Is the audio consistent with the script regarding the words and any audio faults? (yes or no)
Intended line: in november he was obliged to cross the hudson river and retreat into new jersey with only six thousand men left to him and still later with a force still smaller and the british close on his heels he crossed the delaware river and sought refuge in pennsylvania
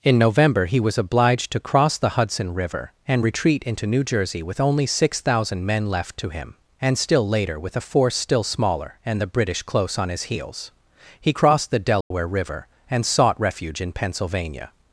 no